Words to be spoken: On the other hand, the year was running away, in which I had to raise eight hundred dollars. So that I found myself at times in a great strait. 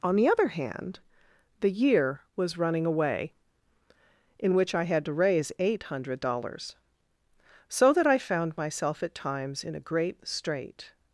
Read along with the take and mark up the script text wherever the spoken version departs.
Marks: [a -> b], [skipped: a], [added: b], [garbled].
On the other hand, the year was running away, in which I had to raise eight hundred dollars. So that I found myself at times in a great strait.